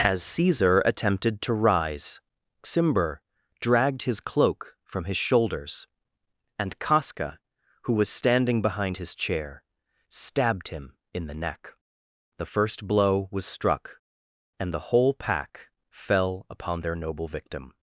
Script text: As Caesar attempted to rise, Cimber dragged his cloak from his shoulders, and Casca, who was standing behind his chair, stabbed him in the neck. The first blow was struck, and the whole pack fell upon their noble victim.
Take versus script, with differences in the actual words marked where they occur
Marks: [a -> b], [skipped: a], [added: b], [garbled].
As Caesar attempted to rise, Cimber dragged his cloak from his shoulders, and Casca, who was standing behind his chair, stabbed him in the neck. The first blow was struck, and the whole pack fell upon their noble victim.